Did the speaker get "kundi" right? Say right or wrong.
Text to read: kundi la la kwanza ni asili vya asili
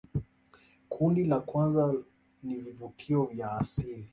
right